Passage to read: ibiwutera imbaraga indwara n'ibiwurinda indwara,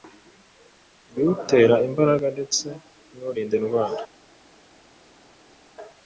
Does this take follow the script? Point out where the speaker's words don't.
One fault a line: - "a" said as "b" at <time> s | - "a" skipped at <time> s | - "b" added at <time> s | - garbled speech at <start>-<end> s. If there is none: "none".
- "indwara" said as "ndetse" at 2.4 s